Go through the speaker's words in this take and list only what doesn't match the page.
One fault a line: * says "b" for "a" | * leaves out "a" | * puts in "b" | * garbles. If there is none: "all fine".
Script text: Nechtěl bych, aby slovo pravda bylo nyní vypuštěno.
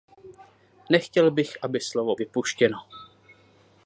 * leaves out "pravda bylo nyní"